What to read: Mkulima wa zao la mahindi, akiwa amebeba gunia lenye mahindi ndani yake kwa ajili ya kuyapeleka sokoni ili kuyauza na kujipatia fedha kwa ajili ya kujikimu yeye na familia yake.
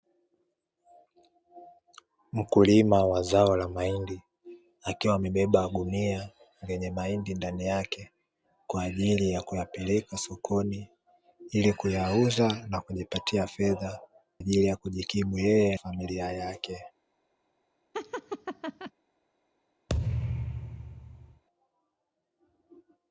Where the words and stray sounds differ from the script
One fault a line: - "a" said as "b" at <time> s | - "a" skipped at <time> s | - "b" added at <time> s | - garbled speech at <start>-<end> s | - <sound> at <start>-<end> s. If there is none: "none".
- "kwa" skipped at 14.0 s
- "na" skipped at 15.8 s
- laugh at 17.9-18.9 s
- thud at 19.9-21.4 s